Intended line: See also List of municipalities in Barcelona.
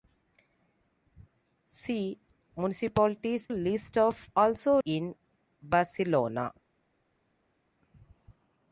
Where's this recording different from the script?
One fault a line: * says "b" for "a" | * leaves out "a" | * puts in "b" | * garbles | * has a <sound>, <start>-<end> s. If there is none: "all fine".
* says "municipalities" for "also"
* says "also" for "municipalities"